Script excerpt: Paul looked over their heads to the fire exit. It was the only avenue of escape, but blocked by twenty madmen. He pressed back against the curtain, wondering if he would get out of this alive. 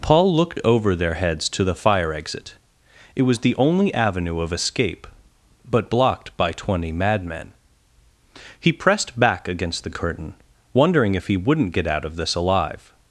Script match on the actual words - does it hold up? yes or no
no